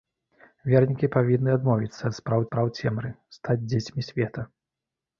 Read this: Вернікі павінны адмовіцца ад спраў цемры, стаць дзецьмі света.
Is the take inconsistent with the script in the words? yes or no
yes